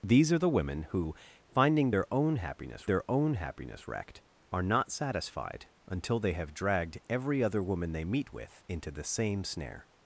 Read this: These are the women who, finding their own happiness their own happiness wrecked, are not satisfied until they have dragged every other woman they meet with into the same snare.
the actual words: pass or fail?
pass